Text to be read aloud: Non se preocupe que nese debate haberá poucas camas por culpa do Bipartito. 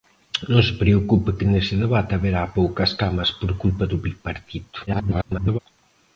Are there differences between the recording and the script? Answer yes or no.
yes